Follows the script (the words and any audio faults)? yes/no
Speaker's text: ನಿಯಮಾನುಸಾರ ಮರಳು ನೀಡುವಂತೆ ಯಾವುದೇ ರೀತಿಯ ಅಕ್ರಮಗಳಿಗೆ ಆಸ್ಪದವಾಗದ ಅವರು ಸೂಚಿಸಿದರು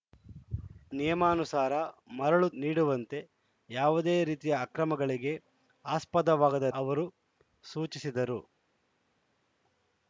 yes